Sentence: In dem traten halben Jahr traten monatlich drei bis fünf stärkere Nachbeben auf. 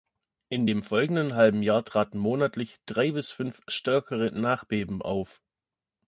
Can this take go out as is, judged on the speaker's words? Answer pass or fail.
fail